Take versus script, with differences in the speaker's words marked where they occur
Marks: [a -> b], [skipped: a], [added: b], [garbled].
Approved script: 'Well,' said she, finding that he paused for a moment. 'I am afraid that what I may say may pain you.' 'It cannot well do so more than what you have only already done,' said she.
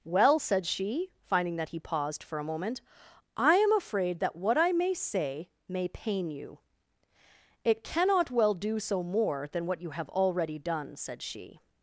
'Well,' said she, finding that he paused for a moment. 'I am afraid that what I may say may pain you.' 'It cannot well do so more than what you have [skipped: only] already done,' said she.